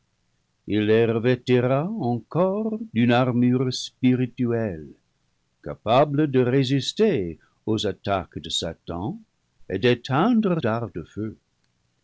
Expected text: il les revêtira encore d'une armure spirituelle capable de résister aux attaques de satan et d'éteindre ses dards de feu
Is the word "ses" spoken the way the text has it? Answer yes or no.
no